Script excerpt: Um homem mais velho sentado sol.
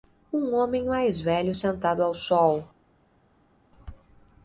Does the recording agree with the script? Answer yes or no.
no